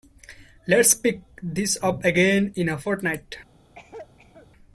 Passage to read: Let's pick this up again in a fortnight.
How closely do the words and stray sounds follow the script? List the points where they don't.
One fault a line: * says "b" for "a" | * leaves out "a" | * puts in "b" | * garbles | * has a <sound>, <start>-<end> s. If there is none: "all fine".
* has a cough, 3.8-4.5 s